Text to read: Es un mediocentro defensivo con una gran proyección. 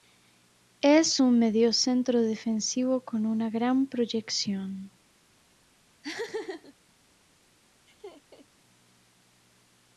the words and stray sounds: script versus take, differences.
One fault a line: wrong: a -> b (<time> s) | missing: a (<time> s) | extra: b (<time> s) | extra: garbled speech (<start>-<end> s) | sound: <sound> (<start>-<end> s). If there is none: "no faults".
sound: laugh (6.0-6.7 s)
sound: laugh (7.9-8.5 s)